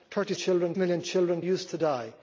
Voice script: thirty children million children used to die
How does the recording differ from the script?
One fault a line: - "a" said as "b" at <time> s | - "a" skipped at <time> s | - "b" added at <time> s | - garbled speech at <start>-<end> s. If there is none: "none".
none